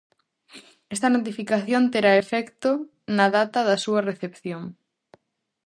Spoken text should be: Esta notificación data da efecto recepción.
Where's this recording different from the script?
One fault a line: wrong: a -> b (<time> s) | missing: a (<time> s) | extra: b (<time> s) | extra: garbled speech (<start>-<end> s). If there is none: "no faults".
extra: terá efecto na (1.9 s)
wrong: efecto -> súa (3.8 s)